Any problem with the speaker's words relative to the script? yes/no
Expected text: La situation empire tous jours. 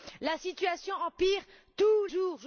no